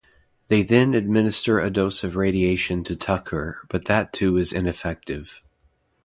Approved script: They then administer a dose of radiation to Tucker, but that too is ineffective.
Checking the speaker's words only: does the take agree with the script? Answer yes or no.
yes